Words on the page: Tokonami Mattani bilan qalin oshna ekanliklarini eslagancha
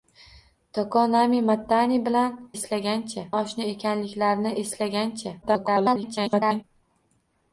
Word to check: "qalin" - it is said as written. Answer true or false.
false